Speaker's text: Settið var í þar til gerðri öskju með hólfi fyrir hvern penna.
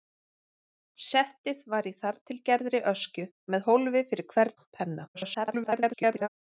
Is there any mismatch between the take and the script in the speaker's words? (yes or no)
yes